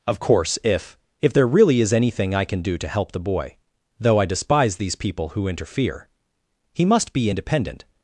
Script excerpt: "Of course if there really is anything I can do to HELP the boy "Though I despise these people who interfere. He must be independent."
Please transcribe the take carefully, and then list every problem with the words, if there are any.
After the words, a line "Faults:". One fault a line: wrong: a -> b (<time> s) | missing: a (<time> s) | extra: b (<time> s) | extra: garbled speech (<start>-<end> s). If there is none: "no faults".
"Of course if if there really is anything I can do to HELP the boy "Though I despise these people who interfere. He must be independent."
Faults:
extra: if (1.2 s)